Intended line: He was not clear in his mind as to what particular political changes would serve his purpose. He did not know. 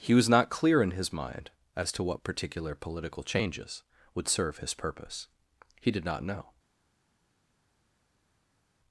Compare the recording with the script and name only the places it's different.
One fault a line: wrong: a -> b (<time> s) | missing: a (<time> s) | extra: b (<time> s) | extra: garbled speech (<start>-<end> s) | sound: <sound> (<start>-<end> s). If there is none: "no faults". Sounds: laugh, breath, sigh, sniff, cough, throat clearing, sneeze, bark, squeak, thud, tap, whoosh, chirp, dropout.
no faults